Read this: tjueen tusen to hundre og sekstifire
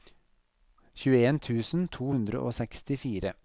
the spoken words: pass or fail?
pass